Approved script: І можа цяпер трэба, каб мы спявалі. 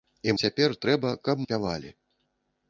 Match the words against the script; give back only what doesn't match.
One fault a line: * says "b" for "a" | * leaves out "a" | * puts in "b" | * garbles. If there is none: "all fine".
* leaves out "можа"
* leaves out "мы"